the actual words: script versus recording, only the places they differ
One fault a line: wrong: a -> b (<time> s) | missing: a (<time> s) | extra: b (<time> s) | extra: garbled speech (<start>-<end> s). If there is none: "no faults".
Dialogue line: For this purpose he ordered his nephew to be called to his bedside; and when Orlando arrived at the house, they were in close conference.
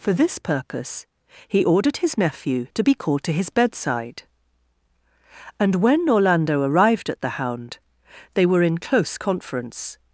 wrong: house -> hound (7.4 s)